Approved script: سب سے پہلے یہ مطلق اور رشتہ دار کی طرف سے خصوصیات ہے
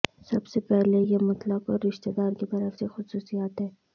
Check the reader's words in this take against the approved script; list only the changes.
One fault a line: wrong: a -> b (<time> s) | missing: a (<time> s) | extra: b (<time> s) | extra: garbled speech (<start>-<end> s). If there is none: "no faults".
no faults